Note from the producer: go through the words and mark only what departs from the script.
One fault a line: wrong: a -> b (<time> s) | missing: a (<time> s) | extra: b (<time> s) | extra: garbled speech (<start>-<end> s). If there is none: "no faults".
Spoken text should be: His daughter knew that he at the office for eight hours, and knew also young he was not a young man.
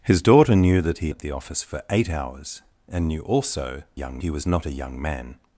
no faults